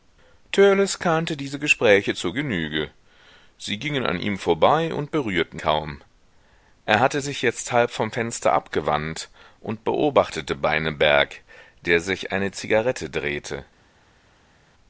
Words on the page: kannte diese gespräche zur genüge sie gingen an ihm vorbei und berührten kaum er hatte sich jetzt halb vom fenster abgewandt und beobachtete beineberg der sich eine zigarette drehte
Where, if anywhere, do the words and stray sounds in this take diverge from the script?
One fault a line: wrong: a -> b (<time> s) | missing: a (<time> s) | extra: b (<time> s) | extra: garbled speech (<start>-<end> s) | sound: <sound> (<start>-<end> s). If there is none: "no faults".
no faults